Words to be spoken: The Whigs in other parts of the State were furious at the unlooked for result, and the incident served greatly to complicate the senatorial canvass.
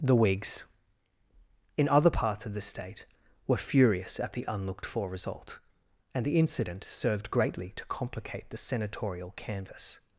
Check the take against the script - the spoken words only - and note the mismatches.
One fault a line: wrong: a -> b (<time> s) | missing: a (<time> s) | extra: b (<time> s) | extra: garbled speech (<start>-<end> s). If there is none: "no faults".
no faults